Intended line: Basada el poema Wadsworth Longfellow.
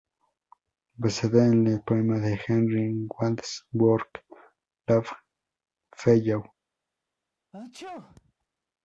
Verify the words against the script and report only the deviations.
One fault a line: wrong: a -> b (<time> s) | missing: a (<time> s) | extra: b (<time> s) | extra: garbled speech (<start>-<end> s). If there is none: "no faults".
extra: en (1.4 s)
extra: de Henry (2.2 s)